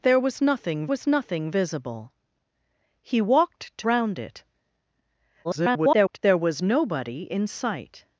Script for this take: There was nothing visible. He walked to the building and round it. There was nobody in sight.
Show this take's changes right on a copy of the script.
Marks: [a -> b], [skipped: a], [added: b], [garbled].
There was nothing [added: was nothing] visible. He walked to [skipped: the building and] round it. [garbled] There was nobody in sight.